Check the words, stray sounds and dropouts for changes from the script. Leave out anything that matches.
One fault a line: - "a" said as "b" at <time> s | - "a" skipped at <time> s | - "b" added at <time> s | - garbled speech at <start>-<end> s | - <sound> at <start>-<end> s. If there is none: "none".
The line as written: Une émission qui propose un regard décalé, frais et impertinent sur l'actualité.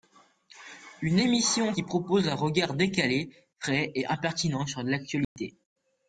- dropout at 5.2-5.4 s